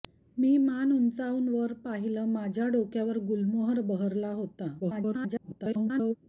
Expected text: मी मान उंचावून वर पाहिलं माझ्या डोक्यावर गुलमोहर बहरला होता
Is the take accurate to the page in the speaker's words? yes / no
no